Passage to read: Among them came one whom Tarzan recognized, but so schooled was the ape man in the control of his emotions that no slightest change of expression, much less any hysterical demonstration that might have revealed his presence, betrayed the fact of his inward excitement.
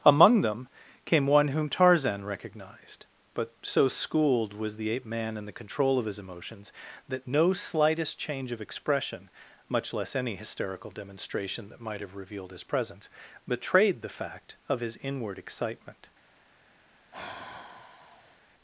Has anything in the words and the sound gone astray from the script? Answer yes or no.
yes